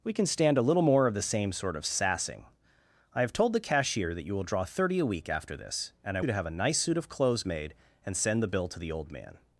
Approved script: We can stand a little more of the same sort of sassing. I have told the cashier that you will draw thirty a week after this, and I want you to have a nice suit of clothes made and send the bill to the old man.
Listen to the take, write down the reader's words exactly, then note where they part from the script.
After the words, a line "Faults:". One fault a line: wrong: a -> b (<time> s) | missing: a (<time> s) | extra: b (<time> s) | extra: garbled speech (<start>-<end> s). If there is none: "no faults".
We can stand a little more of the same sort of sassing. I have told the cashier that you will draw thirty a week after this, and I you to have a nice suit of clothes made and send the bill to the old man.
Faults:
missing: want (6.2 s)